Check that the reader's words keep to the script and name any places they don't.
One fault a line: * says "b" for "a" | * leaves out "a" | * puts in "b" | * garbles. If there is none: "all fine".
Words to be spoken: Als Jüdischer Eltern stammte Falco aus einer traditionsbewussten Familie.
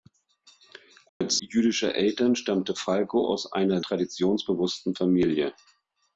all fine